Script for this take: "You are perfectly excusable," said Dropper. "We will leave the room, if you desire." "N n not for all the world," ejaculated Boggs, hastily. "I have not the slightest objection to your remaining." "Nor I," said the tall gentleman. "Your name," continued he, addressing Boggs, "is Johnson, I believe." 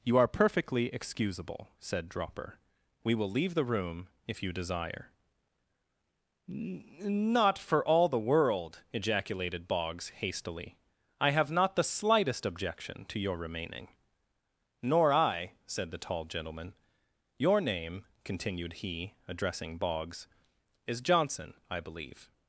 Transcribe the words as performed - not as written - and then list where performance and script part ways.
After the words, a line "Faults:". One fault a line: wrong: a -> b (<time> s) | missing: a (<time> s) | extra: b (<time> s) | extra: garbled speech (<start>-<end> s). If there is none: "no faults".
"You are perfectly excusable," said Dropper. "We will leave the room, if you desire." not for all the world," ejaculated Boggs, hastily. "I have not the slightest objection to your remaining." "Nor I," said the tall gentleman. "Your name," continued he, addressing Boggs, "is Johnson, I believe."
Faults:
missing: N n (5.1 s)